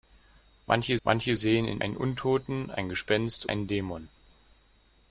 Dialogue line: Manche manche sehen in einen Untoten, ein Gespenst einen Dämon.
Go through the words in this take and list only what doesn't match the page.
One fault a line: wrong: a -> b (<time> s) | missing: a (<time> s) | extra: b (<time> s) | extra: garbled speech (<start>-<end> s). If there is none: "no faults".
no faults